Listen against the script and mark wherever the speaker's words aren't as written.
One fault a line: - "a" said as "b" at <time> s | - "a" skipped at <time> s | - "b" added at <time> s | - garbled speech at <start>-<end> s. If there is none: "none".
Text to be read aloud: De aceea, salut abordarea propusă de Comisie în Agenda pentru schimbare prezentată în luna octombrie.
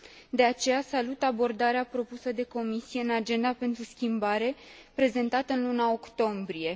none